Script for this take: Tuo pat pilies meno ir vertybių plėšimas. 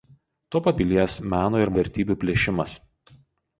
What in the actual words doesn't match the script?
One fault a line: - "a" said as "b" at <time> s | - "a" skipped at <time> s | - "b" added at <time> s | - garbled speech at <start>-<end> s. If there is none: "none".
none